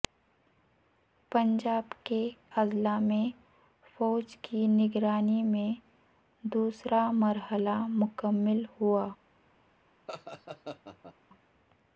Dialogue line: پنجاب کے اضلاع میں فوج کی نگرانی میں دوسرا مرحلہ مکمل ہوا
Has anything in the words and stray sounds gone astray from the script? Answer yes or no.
yes